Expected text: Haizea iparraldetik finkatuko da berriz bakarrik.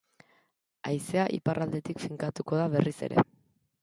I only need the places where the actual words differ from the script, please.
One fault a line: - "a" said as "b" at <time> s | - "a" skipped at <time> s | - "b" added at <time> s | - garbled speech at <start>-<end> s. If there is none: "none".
- "bakarrik" said as "ere" at 3.1 s